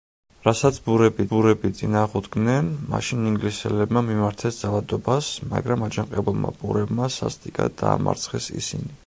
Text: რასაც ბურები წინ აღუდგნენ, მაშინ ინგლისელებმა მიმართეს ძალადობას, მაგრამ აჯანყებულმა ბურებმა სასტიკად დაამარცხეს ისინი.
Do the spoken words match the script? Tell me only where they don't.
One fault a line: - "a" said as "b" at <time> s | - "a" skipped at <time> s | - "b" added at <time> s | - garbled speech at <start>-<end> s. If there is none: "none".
- "ბურები" added at 1.3 s